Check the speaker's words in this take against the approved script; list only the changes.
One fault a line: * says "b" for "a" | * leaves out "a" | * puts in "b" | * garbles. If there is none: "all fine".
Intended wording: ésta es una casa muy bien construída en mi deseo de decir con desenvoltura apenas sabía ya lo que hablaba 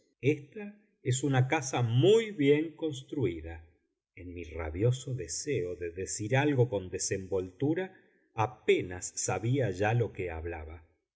* puts in "rabioso"
* puts in "algo"